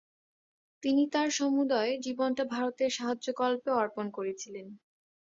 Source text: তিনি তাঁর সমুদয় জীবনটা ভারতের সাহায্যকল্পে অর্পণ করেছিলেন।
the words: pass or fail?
pass